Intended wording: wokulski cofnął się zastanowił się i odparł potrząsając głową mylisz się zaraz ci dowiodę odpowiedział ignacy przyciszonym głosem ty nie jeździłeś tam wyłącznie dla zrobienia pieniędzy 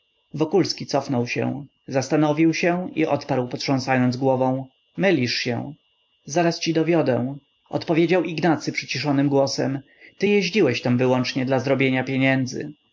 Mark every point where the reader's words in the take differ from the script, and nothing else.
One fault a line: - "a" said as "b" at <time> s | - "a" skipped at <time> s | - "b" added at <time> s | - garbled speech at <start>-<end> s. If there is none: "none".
- "nie" skipped at 10.3 s